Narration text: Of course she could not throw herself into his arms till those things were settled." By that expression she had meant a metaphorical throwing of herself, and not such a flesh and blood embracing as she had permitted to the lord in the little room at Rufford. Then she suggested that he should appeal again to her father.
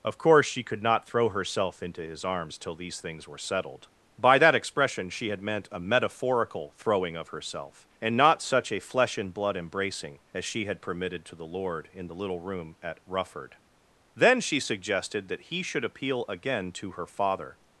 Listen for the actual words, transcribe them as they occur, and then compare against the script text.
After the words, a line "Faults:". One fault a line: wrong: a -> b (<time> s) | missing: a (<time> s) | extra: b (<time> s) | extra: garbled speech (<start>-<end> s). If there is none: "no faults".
Of course she could not throw herself into his arms till these things were settled." By that expression she had meant a metaphorical throwing of herself, and not such a flesh and blood embracing as she had permitted to the lord in the little room at Rufford. Then she suggested that he should appeal again to her father.
Faults:
wrong: those -> these (2.8 s)